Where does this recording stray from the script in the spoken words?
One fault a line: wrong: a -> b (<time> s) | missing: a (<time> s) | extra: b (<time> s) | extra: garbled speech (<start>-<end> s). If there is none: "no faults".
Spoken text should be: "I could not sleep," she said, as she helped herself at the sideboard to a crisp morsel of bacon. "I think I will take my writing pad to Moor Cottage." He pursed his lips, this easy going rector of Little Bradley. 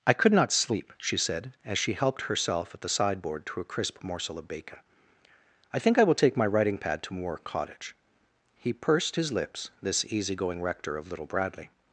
no faults